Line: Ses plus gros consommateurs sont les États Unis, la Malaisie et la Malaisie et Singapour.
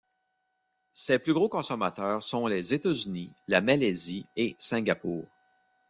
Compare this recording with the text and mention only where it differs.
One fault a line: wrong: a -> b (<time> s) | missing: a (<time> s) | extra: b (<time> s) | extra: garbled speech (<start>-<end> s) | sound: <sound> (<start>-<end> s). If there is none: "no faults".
missing: la Malaisie et (4.5 s)